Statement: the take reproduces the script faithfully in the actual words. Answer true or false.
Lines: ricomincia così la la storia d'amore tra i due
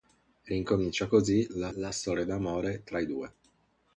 true